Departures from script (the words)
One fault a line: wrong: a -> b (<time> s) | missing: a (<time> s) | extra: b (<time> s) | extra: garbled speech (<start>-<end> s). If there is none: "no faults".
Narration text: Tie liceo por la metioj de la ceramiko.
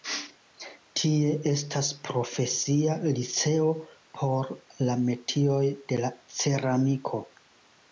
extra: estas profesia (1.5 s)